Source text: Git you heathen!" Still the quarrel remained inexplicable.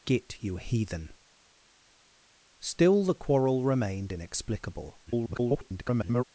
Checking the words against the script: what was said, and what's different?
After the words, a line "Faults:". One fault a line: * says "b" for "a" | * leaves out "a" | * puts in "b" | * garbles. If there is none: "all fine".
Git you heathen!" Still the quarrel remained inexplicable. [garbled]
Faults:
* garbles